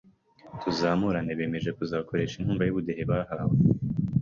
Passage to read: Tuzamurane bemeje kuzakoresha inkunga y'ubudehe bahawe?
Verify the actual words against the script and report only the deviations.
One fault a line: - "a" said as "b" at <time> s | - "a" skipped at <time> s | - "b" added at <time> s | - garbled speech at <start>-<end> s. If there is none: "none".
none